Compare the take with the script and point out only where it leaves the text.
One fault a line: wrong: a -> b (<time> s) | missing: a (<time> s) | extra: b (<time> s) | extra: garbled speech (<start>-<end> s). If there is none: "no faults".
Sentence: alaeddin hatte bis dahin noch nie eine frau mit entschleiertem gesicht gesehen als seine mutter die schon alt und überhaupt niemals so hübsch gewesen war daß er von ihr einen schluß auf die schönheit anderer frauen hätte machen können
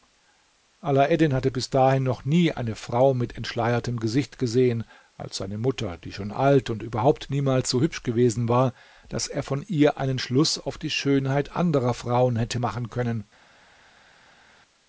no faults